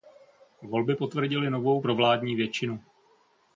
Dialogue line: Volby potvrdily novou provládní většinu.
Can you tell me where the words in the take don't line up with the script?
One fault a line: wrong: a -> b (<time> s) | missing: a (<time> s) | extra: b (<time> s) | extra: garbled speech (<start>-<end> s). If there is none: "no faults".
no faults